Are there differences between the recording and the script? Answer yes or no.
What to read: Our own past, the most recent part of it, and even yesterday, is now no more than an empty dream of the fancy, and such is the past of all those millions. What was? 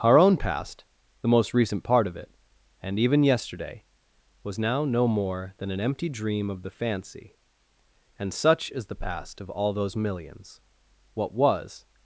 yes